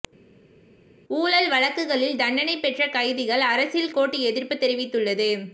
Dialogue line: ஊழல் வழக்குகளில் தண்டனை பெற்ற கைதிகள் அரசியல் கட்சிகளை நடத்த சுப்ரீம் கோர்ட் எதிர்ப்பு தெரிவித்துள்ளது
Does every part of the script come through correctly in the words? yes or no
no